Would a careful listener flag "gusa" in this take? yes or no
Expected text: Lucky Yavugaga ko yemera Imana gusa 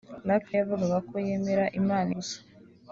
no